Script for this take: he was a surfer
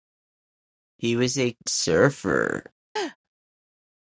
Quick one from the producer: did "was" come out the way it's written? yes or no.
yes